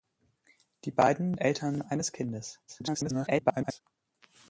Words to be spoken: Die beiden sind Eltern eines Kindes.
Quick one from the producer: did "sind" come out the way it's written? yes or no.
no